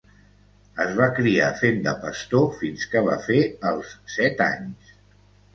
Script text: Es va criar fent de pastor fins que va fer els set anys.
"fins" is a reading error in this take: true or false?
false